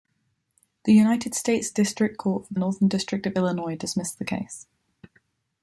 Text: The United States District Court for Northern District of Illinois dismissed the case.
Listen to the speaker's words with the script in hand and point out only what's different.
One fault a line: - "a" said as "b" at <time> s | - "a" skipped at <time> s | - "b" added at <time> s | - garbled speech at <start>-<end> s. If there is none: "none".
none